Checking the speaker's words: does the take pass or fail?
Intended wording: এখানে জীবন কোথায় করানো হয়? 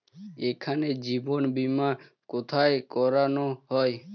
fail